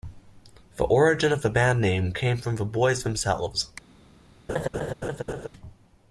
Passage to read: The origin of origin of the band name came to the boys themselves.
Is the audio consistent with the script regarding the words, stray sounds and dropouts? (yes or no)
no